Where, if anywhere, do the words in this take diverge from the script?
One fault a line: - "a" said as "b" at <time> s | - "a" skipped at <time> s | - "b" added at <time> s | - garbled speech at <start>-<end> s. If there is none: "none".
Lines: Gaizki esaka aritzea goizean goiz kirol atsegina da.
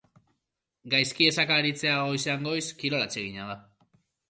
none